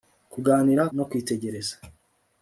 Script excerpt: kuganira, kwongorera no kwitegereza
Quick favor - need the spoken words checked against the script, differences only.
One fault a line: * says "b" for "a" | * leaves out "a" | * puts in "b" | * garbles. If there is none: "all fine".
* leaves out "kwongorera"